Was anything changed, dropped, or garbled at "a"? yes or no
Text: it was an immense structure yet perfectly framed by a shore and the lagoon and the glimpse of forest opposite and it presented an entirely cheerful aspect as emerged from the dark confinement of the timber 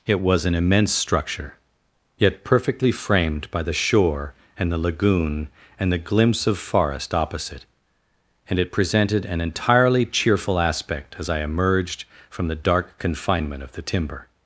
yes